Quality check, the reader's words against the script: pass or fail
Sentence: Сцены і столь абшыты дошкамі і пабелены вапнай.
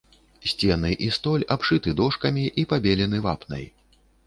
pass